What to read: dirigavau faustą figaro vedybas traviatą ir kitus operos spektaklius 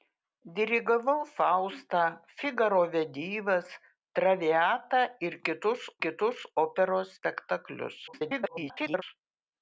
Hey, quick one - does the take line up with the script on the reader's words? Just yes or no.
no